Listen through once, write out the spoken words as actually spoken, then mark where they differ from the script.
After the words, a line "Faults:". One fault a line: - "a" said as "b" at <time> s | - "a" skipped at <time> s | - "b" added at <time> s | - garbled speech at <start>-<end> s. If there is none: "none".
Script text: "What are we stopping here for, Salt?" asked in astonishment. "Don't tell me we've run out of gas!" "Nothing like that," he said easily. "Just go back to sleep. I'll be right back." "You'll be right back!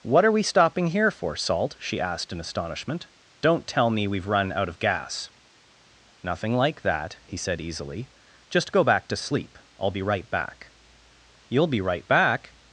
"What are we stopping here for, Salt?" she asked in astonishment. "Don't tell me we've run out of gas!" "Nothing like that," he said easily. "Just go back to sleep. I'll be right back." "You'll be right back!
Faults:
- "she" added at 1.8 s